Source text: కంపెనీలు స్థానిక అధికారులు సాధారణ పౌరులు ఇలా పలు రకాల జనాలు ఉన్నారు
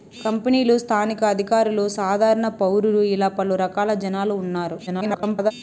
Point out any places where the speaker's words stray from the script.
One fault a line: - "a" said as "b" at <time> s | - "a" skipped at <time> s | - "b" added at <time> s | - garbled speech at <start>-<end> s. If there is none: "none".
- garbled speech at 4.9-5.5 s